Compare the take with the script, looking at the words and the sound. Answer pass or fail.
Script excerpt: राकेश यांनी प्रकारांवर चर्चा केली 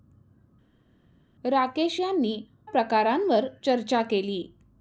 pass